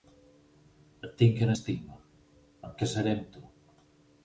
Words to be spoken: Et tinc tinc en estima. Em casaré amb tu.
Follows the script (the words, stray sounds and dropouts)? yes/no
no